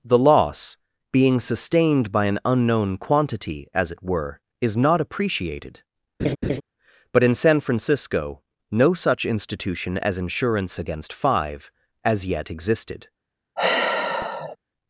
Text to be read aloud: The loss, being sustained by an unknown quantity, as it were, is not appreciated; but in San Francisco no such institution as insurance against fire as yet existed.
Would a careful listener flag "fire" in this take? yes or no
yes